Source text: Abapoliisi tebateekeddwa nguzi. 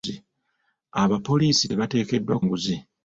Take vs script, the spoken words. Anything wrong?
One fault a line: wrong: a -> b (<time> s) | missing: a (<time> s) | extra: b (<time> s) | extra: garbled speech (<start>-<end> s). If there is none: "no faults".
no faults